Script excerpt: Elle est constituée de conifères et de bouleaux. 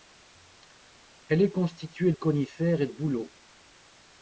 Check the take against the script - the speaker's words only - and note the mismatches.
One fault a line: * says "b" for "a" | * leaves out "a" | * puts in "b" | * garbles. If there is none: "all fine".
* leaves out "de"
* leaves out "de"